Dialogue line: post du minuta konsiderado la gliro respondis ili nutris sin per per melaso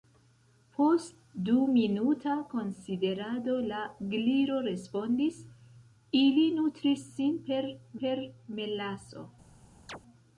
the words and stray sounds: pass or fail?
fail